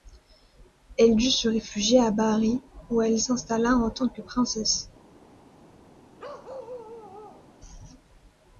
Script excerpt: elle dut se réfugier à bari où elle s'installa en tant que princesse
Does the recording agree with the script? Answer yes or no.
yes